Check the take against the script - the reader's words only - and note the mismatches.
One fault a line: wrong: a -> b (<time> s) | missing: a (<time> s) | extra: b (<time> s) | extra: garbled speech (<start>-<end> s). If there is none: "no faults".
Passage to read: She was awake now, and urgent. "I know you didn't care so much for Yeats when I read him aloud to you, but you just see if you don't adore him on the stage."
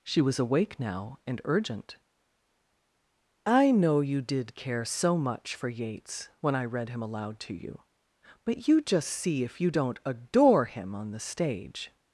wrong: didn't -> did (4.2 s)